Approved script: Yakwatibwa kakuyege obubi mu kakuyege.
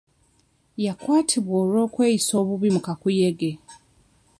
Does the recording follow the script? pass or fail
fail